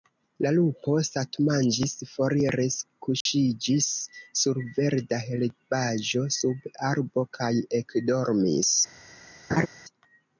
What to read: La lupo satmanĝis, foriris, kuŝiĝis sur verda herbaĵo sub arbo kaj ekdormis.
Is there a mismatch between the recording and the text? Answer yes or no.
no